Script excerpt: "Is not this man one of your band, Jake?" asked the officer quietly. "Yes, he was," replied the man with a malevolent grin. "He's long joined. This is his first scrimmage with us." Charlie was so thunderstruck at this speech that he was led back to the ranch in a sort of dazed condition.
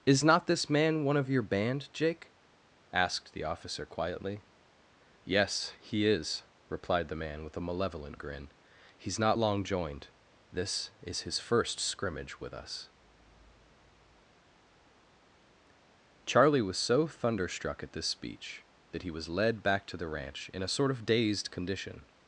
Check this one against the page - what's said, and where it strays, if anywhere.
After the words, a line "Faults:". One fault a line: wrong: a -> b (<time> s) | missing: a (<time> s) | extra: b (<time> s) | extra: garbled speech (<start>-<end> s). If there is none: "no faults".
"Is not this man one of your band, Jake?" asked the officer quietly. "Yes, he is," replied the man with a malevolent grin. "He's not long joined. This is his first scrimmage with us." Charlie was so thunderstruck at this speech that he was led back to the ranch in a sort of dazed condition.
Faults:
wrong: was -> is (6.1 s)
extra: not (9.2 s)